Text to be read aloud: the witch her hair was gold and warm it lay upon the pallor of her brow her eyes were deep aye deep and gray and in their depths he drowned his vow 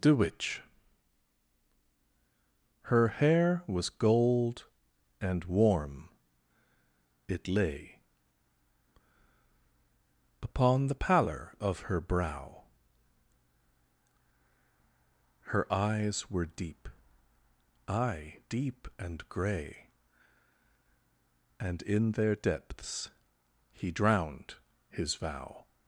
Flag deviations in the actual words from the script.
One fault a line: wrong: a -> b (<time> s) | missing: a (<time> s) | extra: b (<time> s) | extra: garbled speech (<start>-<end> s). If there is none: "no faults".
no faults